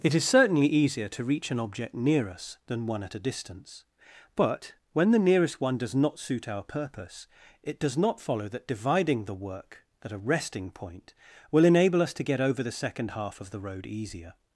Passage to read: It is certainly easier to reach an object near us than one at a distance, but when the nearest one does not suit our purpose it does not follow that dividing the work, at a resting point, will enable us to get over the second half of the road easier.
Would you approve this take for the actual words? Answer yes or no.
yes